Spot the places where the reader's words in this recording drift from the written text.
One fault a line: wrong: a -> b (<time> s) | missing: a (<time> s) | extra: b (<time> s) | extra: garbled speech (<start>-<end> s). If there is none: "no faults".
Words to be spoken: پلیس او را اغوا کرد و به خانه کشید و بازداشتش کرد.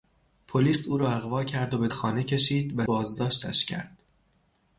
no faults